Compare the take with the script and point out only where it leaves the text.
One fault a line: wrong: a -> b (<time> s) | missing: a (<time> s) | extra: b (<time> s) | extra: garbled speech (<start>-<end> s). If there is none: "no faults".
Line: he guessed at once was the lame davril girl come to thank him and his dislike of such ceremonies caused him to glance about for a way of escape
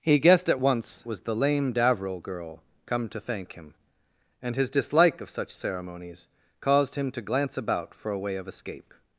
no faults